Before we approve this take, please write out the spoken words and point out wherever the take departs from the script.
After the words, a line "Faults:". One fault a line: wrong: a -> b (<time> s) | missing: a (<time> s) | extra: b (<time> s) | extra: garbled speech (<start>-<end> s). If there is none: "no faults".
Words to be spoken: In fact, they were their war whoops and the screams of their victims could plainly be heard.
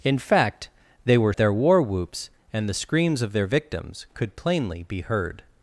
In fact, they were their war whoops and the screams of their victims could plainly be heard.
Faults:
no faults